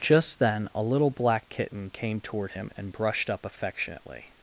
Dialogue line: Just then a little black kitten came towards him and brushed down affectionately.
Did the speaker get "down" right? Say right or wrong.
wrong